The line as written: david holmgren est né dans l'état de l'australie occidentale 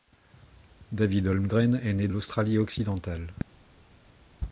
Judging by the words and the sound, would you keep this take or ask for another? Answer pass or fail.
fail